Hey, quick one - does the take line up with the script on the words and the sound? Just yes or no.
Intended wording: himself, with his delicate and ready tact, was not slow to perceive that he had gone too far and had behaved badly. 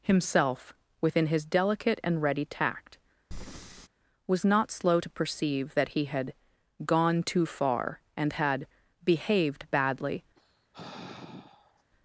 no